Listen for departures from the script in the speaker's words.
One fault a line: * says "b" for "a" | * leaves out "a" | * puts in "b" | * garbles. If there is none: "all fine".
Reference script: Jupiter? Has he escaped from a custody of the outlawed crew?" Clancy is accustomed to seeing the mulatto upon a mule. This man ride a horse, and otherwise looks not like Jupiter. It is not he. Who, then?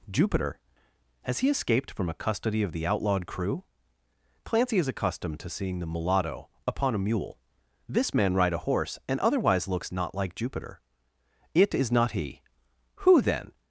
all fine